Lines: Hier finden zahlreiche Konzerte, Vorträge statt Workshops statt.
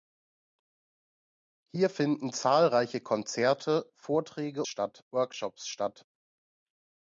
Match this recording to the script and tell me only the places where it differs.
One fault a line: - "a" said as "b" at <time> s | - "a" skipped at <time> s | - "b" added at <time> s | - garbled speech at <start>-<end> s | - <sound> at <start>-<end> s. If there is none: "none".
none